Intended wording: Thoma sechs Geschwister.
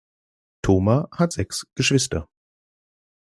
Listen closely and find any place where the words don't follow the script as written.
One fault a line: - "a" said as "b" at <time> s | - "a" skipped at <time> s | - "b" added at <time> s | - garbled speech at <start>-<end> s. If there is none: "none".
- "hat" added at 1.1 s